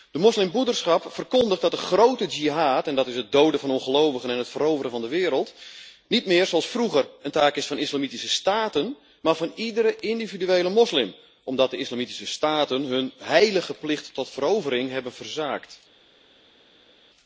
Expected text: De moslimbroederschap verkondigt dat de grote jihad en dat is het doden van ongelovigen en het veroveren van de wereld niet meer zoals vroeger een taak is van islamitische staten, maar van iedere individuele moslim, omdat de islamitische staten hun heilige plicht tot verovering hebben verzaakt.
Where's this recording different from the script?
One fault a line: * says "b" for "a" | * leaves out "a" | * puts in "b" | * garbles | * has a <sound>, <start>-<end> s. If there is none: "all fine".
all fine